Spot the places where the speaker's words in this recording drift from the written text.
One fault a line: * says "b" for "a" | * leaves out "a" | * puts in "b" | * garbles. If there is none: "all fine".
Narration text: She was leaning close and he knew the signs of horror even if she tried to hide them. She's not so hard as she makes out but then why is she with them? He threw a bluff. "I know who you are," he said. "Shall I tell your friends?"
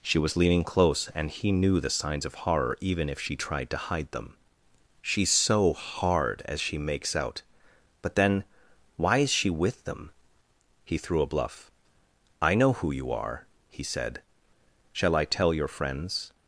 * leaves out "not"